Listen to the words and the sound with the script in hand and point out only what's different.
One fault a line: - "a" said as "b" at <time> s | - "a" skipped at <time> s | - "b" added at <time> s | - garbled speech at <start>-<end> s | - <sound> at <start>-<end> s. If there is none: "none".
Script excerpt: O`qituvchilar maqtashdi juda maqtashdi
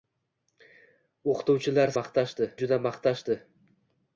none